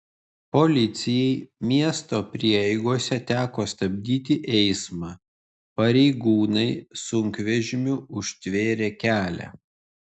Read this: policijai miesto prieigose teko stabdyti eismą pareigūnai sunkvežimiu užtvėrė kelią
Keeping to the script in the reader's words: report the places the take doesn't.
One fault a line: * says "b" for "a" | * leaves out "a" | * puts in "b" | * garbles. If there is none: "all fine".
all fine